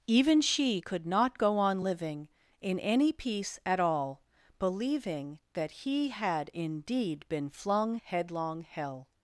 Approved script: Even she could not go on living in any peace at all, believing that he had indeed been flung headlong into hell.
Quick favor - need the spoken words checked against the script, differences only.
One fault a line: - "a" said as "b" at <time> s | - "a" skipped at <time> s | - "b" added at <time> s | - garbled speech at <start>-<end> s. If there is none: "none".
- "into" skipped at 8.6 s